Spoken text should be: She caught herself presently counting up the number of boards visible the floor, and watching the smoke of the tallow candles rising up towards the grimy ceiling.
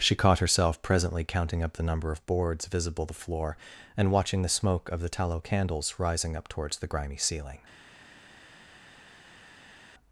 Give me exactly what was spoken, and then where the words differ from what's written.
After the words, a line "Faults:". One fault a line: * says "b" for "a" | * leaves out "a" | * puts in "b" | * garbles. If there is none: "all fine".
She caught herself presently counting up the number of boards visible the floor, and watching the smoke of the tallow candles rising up towards the grimy ceiling.
Faults:
all fine